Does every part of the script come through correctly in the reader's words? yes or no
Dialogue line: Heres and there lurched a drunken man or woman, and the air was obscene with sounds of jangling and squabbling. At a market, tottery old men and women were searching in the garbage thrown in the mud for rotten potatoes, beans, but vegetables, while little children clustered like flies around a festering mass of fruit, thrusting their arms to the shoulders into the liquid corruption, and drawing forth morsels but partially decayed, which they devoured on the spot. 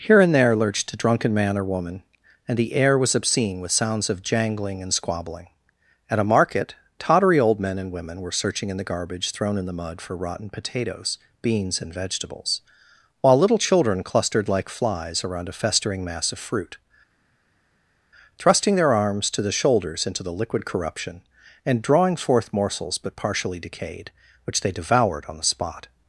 no